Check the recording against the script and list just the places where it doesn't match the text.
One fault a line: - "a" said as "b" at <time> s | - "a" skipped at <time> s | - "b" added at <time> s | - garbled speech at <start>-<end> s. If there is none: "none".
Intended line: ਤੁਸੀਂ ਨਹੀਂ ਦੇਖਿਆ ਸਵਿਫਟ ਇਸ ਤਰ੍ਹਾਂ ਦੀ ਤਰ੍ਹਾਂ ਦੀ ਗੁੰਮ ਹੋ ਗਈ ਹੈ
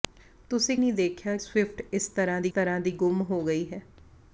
none